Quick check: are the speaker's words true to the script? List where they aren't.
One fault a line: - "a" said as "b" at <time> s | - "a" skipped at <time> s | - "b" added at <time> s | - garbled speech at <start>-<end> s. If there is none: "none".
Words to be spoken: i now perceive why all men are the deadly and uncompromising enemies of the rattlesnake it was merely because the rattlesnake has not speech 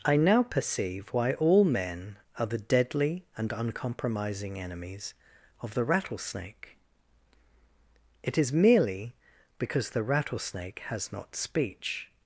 - "was" said as "is" at 8.4 s